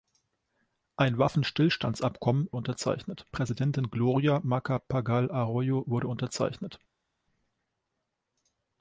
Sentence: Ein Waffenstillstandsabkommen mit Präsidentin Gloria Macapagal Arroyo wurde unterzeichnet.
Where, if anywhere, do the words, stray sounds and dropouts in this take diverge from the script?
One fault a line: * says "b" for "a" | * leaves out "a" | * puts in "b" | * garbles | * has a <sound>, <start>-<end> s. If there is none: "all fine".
* says "unterzeichnet" for "mit"